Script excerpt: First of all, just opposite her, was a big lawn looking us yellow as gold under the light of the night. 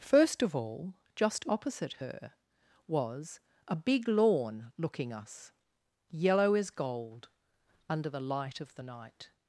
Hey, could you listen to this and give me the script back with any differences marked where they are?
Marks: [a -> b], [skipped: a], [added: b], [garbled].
First of all, just opposite her, was a big lawn looking us yellow as gold under the light of the night.